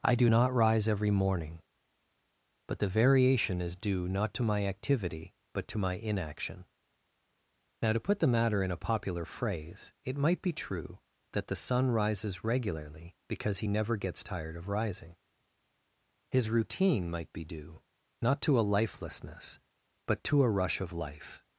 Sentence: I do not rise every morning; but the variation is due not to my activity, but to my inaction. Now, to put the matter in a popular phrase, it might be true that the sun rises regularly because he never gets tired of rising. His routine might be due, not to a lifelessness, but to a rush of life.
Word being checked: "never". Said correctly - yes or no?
yes